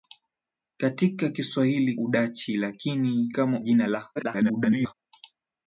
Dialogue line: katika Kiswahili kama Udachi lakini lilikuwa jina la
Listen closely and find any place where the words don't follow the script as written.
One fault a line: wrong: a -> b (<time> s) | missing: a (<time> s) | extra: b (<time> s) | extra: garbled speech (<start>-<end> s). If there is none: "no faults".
missing: kama (1.9 s)
wrong: lilikuwa -> kama (3.3 s)
extra: garbled speech (4.2-4.9 s)